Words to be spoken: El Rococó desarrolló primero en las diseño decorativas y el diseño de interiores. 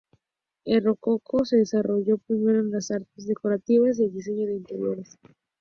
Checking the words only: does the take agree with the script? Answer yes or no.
no